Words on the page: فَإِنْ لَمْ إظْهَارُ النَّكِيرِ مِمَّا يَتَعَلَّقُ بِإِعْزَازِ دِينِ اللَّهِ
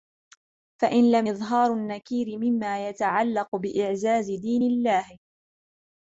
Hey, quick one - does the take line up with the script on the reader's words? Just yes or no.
yes